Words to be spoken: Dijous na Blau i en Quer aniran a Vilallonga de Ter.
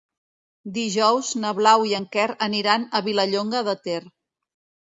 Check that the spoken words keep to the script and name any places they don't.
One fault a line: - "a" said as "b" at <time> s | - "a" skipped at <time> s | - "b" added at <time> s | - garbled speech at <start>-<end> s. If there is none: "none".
none